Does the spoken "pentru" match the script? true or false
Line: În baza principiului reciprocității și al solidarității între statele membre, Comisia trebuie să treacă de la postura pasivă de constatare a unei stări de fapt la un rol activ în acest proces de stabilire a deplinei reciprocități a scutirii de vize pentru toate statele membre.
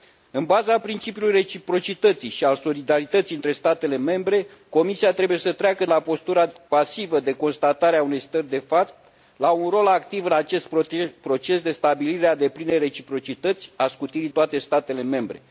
false